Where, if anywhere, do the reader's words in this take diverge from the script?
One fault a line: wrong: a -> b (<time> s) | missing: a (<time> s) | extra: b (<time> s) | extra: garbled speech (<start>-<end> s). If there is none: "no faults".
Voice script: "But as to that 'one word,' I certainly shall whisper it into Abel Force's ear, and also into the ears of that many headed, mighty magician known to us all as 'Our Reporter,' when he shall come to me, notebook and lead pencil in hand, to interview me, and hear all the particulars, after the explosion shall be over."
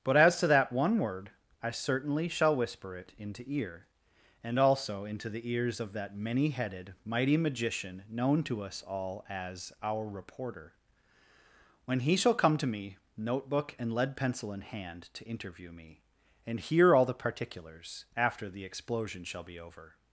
missing: Abel Force's (3.4 s)